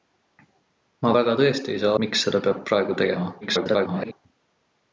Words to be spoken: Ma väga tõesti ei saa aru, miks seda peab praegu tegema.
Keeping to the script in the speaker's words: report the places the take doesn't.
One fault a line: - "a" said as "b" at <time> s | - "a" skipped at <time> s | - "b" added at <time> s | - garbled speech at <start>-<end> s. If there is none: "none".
- "aru" skipped at 2.0 s
- garbled speech at 3.4-4.1 s